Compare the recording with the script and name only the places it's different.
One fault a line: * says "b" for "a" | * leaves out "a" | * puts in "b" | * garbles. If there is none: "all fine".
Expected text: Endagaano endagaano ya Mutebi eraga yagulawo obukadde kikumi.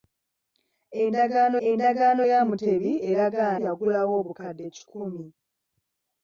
all fine